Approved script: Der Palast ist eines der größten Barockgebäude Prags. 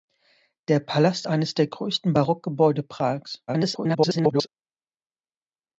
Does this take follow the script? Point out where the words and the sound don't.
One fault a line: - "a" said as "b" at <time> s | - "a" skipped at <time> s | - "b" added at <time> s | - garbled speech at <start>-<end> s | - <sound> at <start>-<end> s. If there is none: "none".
- "ist" skipped at 1.3 s
- garbled speech at 3.5-4.5 s